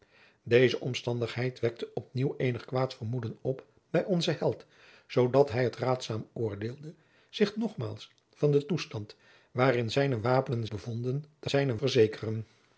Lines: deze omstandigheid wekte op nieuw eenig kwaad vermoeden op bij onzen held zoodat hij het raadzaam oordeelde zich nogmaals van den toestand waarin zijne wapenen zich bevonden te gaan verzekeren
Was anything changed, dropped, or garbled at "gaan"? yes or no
yes